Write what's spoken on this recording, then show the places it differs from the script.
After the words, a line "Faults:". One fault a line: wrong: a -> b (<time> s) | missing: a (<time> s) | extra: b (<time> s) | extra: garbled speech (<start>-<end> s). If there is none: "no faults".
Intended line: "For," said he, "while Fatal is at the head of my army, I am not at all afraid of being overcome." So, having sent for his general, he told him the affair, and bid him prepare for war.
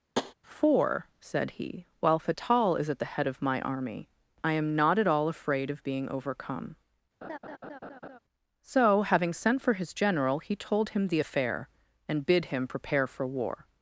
"For," said he, "while Fatal is at the head of my army, I am not at all afraid of being overcome." So, having sent for his general, he told him the affair, and bid him prepare for war.
Faults:
no faults